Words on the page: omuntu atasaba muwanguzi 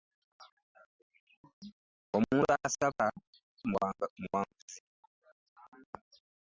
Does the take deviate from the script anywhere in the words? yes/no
no